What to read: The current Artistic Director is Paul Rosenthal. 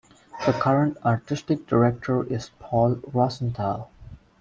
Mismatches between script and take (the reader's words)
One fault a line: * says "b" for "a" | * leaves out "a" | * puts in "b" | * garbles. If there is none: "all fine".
all fine